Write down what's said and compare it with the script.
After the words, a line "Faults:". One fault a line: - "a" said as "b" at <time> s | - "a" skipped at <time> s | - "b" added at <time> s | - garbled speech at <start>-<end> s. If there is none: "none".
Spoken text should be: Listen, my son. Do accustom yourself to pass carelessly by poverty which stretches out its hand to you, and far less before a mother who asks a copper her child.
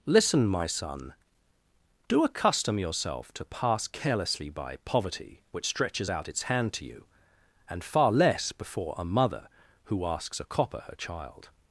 Listen, my son. Do accustom yourself to pass carelessly by poverty which stretches out its hand to you, and far less before a mother who asks a copper her child.
Faults:
none